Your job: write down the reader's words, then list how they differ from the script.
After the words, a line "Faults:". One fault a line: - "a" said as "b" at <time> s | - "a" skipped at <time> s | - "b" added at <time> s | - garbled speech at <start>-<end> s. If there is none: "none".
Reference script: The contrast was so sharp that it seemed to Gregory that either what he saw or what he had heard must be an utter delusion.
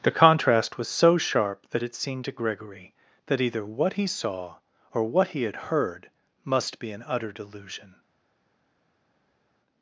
The contrast was so sharp that it seemed to Gregory that either what he saw or what he had heard must be an utter delusion.
Faults:
none